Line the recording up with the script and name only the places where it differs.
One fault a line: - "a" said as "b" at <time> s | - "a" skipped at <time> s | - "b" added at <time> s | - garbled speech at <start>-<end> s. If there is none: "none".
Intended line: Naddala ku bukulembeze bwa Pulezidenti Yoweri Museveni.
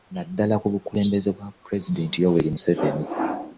none